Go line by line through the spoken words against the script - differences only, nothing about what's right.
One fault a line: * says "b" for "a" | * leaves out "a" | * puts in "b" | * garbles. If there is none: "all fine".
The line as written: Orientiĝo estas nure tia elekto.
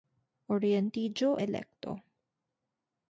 * leaves out "estas nure tia"